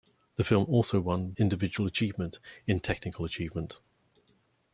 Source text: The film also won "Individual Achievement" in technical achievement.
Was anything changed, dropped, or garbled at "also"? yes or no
no